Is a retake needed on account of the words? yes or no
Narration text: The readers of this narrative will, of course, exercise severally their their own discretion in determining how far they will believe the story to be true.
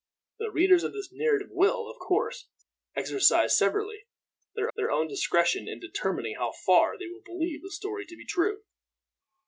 no